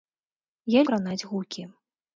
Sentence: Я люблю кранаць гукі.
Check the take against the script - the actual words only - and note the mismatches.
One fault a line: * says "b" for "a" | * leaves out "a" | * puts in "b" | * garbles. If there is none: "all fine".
* leaves out "люблю"